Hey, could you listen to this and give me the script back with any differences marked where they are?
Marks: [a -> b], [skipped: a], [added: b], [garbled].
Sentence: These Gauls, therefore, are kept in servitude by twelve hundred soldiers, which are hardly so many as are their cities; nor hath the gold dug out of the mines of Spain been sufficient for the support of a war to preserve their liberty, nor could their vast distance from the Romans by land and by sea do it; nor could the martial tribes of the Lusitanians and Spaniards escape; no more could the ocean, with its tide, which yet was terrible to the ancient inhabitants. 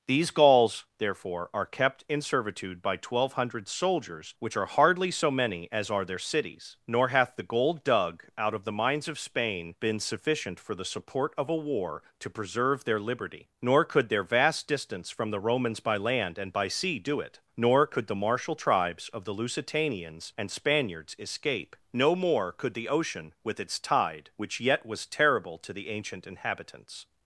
These Gauls, therefore, are kept in servitude by twelve hundred soldiers, which are hardly so many as are their cities; nor hath the gold dug out of the mines of Spain been sufficient for the support of a war to preserve their liberty, nor could their vast distance from the Romans by land and by sea do it; nor could the martial tribes of the Lusitanians and Spaniards escape; no more could the ocean, with its tide, which yet was terrible to the ancient inhabitants.